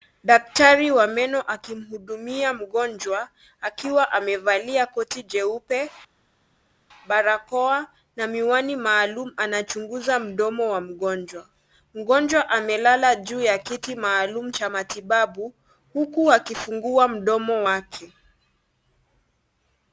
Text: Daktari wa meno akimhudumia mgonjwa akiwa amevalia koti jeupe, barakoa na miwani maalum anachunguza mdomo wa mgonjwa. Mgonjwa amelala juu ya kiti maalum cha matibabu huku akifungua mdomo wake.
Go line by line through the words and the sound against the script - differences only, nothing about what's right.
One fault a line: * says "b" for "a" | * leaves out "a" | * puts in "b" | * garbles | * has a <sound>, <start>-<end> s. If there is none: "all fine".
all fine